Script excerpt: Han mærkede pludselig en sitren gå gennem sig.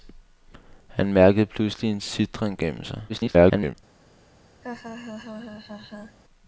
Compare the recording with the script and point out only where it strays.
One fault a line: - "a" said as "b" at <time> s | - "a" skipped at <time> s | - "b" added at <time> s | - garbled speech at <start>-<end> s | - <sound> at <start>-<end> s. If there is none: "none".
- "gå" skipped at 2.6 s
- garbled speech at 3.1-3.8 s
- laugh at 4.6-6.2 s